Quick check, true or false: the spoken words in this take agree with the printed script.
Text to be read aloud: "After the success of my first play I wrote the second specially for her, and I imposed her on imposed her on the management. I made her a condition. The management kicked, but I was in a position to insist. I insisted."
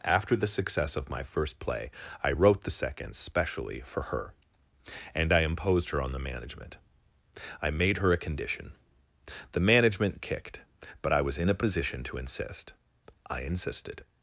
false